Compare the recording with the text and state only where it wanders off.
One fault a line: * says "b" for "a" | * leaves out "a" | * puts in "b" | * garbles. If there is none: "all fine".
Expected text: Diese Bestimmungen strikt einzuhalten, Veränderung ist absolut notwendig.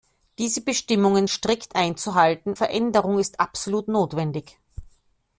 all fine